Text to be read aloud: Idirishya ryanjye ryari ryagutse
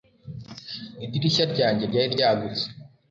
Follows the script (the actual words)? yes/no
yes